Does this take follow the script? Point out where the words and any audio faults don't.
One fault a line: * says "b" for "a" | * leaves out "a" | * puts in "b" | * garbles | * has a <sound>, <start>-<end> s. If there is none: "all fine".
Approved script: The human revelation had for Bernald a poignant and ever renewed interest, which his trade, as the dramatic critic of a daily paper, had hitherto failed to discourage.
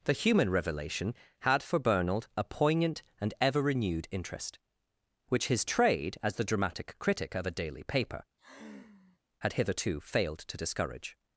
* has a sigh, 8.4-9.2 s